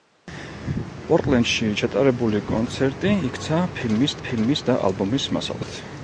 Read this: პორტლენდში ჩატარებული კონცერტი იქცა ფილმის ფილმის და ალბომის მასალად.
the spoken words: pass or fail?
pass